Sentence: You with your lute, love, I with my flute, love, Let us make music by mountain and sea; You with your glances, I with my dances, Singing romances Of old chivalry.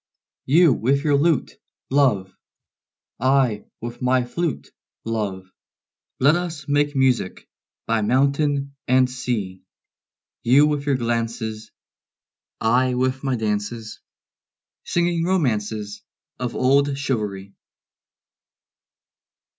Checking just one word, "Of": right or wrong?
right